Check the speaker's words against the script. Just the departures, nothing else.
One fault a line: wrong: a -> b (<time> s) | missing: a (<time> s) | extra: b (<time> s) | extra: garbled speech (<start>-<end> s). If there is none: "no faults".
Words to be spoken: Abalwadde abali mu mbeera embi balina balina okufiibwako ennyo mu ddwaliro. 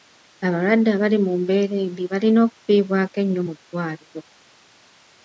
missing: balina (2.4 s)